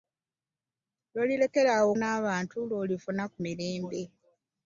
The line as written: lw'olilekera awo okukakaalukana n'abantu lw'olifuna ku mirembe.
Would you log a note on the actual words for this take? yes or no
yes